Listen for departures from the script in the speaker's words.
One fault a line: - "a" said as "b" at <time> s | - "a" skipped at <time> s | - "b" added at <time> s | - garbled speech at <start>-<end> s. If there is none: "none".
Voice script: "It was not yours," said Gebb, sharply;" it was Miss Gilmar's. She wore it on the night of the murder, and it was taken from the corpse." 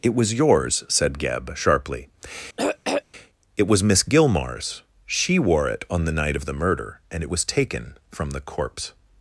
- "not" skipped at 0.3 s